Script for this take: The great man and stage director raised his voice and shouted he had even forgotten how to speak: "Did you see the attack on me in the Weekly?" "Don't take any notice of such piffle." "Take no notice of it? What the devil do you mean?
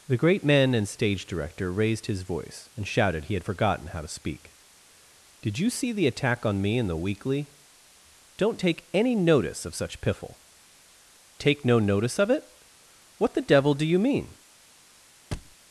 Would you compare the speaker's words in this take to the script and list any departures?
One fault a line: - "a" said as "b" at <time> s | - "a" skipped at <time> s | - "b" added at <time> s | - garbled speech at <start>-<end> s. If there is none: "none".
- "even" skipped at 3.4 s